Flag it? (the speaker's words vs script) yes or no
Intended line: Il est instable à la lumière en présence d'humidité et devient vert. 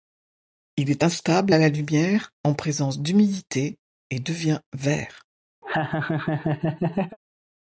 no